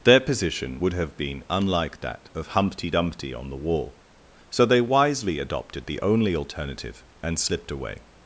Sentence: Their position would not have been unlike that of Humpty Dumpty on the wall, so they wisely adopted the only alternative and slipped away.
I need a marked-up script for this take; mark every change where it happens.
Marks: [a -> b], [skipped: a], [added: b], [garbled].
Their position would [skipped: not] have been unlike that of Humpty Dumpty on the wall, so they wisely adopted the only alternative and slipped away.